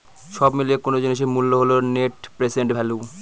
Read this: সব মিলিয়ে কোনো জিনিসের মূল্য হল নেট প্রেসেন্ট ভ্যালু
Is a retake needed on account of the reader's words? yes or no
no